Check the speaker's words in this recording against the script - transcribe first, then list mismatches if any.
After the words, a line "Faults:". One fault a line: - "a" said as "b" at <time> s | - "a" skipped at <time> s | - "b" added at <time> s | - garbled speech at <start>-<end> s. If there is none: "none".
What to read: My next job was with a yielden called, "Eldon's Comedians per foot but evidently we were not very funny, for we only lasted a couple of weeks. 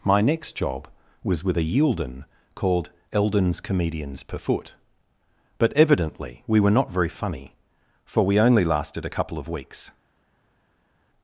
My next job was with a yielden called, "Eldon's Comedians per foot but evidently we were not very funny, for we only lasted a couple of weeks.
Faults:
none